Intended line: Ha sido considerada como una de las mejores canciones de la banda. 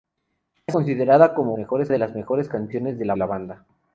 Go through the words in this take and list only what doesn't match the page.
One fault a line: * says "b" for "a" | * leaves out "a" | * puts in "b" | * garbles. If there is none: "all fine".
* leaves out "sido"
* says "mejores" for "una"
* puts in "la"